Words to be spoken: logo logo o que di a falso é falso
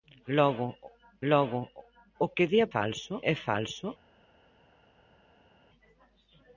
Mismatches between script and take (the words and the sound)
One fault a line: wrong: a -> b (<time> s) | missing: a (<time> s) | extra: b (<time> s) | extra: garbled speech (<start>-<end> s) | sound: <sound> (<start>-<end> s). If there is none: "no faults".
no faults